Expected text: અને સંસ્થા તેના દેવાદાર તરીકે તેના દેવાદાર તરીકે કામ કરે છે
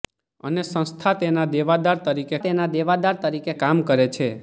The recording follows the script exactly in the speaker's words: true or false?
true